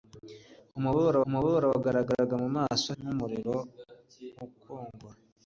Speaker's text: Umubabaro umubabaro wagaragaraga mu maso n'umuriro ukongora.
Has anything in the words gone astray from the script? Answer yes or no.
no